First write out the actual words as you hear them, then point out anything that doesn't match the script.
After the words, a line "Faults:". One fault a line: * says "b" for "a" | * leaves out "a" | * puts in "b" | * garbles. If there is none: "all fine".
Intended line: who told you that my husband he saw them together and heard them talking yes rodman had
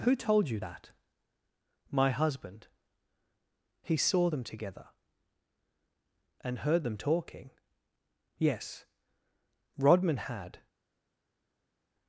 who told you that my husband he saw them together and heard them talking yes rodman had
Faults:
all fine